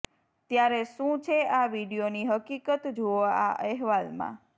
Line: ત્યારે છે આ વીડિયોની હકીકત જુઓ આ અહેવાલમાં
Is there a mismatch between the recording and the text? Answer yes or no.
yes